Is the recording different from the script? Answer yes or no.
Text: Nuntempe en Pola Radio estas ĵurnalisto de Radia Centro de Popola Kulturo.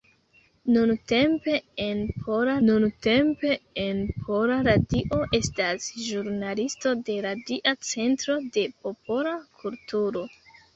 yes